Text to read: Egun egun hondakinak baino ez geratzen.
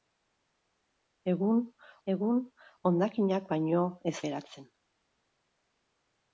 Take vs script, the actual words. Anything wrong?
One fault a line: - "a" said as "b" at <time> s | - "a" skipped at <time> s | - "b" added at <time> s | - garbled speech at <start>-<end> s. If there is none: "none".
none